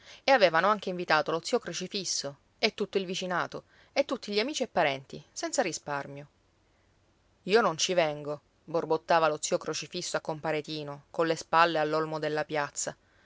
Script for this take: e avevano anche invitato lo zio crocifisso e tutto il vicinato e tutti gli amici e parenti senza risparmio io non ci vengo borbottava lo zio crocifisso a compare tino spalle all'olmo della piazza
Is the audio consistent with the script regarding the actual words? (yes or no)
no